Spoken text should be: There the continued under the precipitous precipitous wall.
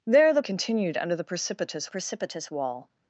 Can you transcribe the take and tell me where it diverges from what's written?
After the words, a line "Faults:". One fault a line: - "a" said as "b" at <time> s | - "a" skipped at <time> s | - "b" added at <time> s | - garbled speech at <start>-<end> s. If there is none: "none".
There the continued under the precipitous precipitous wall.
Faults:
none